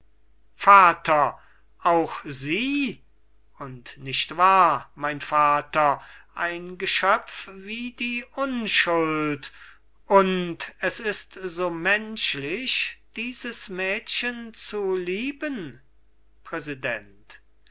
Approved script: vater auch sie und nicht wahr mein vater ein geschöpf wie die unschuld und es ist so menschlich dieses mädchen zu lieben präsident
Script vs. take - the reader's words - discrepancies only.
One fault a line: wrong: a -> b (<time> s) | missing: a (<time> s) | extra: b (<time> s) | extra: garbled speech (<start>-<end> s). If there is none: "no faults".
no faults